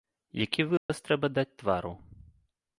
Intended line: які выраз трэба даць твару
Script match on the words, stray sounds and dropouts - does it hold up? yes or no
no